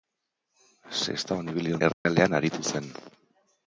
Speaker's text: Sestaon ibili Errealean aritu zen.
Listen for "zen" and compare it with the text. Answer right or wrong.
right